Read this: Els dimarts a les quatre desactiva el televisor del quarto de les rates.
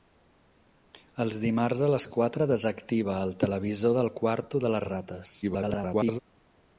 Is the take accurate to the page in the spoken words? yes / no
no